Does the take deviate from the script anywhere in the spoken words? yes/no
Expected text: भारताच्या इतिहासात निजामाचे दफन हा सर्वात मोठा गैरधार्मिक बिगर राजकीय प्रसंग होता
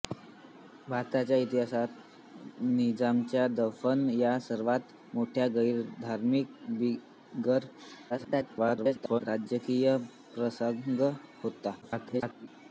yes